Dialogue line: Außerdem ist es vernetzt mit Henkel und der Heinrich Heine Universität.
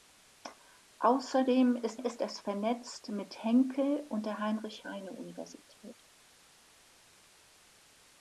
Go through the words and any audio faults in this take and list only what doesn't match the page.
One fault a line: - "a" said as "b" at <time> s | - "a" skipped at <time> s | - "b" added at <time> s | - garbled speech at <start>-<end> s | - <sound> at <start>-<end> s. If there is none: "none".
- "ist" added at 2.0 s